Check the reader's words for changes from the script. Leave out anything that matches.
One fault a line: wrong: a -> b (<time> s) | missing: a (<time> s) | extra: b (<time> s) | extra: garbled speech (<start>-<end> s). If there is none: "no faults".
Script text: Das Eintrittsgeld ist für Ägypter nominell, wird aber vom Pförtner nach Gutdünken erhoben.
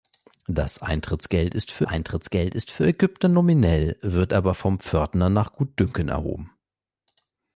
extra: Eintrittsgeld ist für (1.8 s)